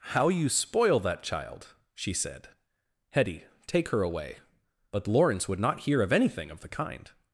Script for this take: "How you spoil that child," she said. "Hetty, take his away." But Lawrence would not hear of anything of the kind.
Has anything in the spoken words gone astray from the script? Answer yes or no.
yes